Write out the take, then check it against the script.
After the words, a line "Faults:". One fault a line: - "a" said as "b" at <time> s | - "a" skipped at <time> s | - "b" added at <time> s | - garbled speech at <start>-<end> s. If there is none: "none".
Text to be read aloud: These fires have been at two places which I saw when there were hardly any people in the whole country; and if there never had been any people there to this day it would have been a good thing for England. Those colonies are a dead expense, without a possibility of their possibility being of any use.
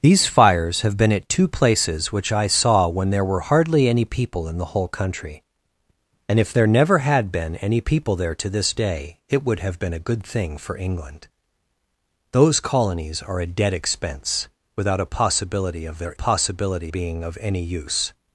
These fires have been at two places which I saw when there were hardly any people in the whole country; and if there never had been any people there to this day it would have been a good thing for England. Those colonies are a dead expense, without a possibility of their possibility being of any use.
Faults:
none